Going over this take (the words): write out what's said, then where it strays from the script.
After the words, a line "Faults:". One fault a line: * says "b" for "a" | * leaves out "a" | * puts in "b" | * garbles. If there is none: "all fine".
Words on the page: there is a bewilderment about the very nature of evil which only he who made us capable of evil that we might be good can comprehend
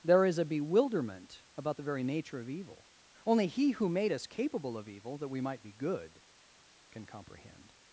there is a bewilderment about the very nature of evil only he who made us capable of evil that we might be good can comprehend
Faults:
* leaves out "which"